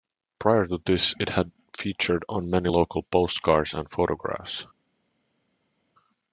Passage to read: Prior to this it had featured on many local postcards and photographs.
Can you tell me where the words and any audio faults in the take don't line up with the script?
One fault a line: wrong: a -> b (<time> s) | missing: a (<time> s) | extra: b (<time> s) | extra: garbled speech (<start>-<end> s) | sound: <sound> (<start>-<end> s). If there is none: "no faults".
no faults